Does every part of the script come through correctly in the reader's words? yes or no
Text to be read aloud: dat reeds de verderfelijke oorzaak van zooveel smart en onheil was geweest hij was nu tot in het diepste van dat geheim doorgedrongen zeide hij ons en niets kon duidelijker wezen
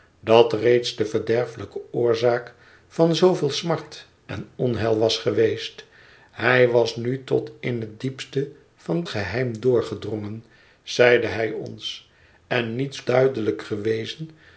no